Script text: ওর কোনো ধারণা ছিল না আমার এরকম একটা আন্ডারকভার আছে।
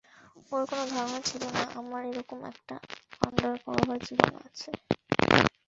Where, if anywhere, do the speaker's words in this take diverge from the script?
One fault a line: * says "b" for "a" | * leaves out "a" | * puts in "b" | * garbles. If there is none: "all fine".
* puts in "জীবন"